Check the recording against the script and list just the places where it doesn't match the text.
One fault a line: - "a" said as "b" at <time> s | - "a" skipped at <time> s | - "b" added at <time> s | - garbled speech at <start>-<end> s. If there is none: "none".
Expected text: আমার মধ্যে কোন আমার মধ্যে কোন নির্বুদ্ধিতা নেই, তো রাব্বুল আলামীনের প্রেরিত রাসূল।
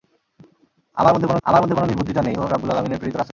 none